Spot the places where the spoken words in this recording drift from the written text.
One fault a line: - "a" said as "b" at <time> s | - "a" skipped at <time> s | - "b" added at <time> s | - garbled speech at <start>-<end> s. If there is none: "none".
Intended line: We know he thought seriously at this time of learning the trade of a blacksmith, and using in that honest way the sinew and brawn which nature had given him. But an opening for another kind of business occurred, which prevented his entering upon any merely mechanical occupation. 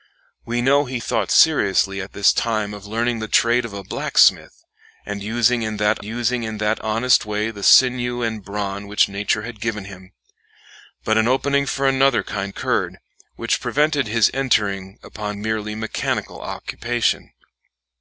- "using in that" added at 6.0 s
- "of business" skipped at 12.5 s
- "any" skipped at 15.4 s